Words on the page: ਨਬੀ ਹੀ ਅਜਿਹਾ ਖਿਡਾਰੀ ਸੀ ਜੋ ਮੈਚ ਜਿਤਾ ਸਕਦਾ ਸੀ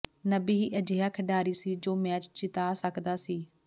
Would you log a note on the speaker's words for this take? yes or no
no